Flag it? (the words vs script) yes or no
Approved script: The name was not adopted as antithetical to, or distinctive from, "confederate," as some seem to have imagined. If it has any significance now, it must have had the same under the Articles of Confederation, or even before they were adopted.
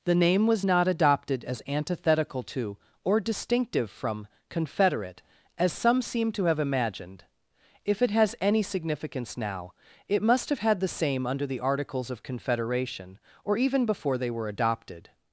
no